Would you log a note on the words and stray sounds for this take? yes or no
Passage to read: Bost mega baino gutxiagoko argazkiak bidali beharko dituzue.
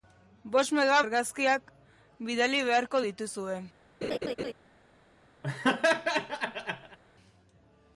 yes